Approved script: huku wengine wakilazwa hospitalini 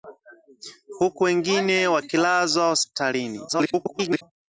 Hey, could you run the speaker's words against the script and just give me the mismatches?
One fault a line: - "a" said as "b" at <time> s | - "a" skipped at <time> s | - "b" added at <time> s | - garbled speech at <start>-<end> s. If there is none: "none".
- garbled speech at 3.5-4.2 s